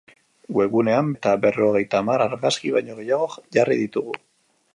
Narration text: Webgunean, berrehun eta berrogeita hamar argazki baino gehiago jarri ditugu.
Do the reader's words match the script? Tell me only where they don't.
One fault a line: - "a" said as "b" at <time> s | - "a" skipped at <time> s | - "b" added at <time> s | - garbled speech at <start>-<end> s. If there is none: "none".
- "berrehun" skipped at 1.1 s